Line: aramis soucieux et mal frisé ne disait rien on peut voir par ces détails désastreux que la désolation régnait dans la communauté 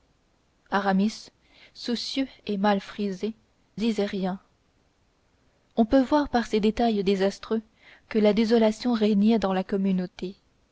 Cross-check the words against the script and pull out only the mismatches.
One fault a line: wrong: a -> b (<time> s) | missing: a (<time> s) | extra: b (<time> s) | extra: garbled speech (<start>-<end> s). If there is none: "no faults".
missing: ne (3.4 s)